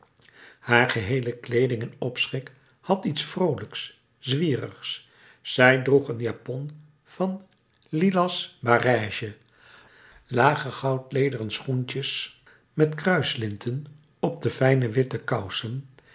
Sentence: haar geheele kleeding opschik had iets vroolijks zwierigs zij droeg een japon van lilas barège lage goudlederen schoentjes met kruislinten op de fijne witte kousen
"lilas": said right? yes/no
yes